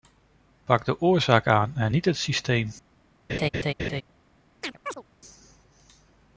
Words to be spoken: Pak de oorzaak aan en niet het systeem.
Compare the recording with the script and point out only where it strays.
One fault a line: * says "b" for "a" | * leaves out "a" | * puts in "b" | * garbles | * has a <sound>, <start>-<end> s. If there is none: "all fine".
* has a laugh, 3.3-4.0 s
* has a chirp, 4.6-5.0 s